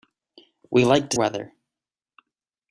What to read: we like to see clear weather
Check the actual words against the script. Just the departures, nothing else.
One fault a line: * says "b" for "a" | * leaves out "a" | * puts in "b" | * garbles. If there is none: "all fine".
* leaves out "see clear"